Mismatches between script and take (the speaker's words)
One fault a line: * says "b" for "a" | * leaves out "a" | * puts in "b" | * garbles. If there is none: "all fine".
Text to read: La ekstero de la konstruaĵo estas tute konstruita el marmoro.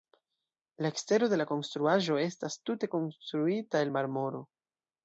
all fine